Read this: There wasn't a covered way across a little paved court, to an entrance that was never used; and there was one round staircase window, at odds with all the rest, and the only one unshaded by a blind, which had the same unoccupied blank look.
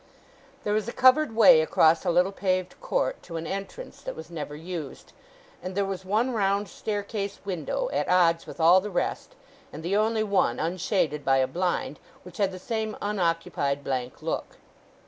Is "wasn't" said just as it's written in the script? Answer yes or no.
no